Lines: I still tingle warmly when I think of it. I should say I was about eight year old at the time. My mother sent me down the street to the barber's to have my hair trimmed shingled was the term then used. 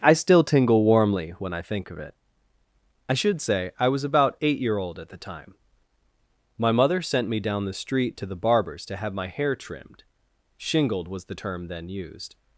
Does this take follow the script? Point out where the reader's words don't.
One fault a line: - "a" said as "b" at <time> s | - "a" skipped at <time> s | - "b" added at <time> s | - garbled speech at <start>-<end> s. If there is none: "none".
none